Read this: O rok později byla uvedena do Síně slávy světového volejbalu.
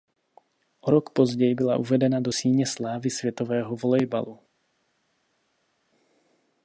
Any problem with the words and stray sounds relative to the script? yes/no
no